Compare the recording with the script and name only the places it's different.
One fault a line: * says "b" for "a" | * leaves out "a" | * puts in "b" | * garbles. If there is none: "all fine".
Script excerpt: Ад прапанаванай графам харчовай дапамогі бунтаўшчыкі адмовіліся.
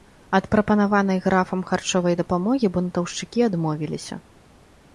all fine